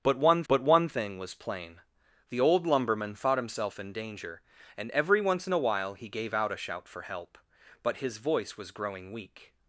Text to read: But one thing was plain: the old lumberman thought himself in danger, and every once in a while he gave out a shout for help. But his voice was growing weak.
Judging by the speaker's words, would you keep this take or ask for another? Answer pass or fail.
fail